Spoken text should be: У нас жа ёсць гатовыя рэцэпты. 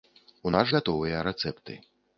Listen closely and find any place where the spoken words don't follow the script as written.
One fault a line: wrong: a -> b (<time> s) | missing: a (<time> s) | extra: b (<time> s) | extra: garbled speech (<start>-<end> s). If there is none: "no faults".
missing: жа ёсць (0.7 s)